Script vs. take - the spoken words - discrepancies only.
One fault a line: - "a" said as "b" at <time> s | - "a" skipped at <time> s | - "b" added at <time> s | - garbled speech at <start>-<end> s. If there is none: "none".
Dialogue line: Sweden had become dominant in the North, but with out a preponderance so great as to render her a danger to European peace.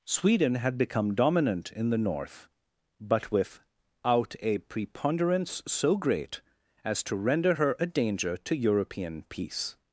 none